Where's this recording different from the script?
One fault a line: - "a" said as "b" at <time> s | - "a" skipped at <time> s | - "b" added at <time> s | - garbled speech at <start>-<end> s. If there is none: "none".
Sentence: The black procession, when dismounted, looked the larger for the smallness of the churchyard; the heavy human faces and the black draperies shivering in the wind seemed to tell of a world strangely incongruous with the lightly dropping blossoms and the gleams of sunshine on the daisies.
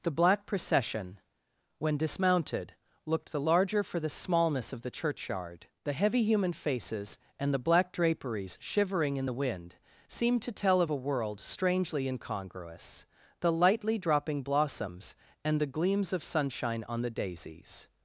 - "with" skipped at 13.1 s